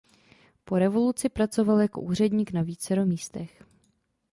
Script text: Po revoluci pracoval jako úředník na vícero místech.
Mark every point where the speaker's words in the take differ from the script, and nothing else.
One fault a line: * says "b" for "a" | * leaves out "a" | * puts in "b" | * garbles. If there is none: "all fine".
all fine